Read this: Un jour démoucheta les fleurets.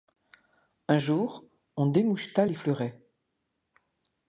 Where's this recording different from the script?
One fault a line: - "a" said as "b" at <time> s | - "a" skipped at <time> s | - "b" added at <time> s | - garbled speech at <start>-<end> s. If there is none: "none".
- "on" added at 1.7 s